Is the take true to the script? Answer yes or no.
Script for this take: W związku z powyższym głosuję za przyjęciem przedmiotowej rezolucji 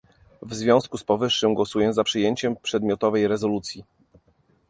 yes